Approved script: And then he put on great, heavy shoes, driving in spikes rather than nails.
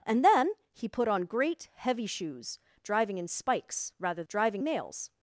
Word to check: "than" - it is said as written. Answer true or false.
false